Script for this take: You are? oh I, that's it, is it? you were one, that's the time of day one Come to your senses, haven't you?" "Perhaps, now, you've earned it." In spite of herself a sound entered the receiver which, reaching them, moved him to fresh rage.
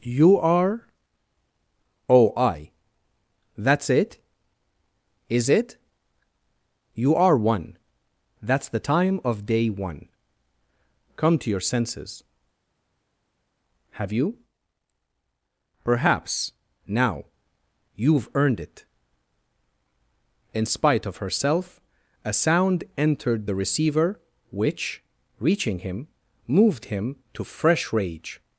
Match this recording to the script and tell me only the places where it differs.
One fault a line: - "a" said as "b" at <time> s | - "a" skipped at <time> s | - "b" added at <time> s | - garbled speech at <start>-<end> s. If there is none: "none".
- "were" said as "are" at 7.1 s
- "haven't" said as "have" at 13.9 s
- "them" said as "him" at 25.8 s